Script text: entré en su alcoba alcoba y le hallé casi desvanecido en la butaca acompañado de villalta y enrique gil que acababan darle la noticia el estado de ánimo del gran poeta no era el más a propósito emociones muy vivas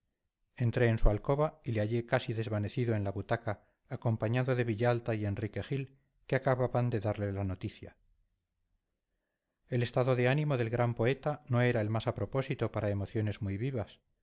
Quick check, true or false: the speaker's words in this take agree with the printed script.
false